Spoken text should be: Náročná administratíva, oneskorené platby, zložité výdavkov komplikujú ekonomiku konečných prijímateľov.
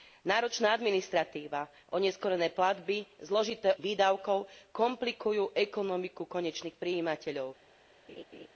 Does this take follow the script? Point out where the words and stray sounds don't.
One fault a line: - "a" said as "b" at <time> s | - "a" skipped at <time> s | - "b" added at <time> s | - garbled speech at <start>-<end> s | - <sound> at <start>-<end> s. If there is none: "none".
- laugh at 8.1-8.5 s